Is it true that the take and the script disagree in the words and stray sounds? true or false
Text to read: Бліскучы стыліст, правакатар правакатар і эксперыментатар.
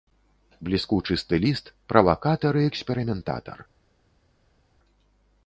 true